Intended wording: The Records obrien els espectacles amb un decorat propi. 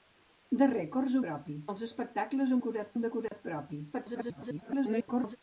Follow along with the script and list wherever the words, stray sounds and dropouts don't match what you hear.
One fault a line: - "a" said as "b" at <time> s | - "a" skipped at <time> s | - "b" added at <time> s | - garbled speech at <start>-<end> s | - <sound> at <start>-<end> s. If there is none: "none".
- "obrien" said as "propi" at 1.3 s
- "amb" said as "decorat" at 2.6 s
- dropout at 3.3-3.3 s
- garbled speech at 3.9-5.4 s